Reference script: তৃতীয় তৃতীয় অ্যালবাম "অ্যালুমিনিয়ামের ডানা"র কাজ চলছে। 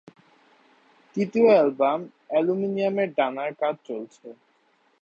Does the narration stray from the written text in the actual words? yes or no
yes